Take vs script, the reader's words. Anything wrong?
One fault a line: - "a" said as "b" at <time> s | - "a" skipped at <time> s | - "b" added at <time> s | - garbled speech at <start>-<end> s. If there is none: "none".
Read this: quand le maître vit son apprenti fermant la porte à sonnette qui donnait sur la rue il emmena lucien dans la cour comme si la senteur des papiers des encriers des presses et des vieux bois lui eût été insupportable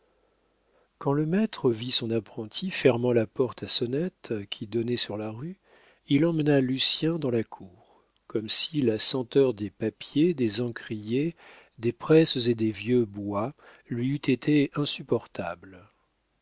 none